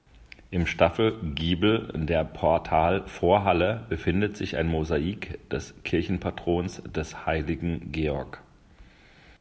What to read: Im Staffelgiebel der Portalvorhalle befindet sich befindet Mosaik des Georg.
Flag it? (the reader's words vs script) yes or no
yes